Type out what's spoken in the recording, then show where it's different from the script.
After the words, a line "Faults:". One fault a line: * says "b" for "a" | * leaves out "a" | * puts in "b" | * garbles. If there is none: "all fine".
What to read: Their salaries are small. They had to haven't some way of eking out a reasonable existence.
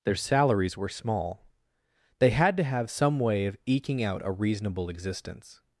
Their salaries were small. They had to have some way of eking out a reasonable existence.
Faults:
* says "were" for "are"
* says "have" for "haven't"